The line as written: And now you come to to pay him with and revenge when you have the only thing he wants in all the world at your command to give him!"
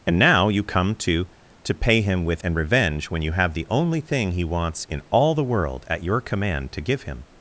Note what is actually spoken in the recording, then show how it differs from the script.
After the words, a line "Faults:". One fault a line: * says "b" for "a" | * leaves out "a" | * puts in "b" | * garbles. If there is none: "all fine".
And now you come to to pay him with and revenge when you have the only thing he wants in all the world at your command to give him!"
Faults:
all fine